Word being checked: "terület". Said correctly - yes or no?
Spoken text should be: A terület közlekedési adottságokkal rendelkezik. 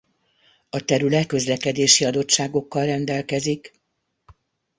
yes